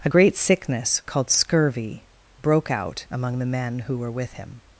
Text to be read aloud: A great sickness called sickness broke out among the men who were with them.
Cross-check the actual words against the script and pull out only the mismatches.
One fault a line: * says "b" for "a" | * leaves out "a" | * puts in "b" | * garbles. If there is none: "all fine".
* says "scurvy" for "sickness"
* says "him" for "them"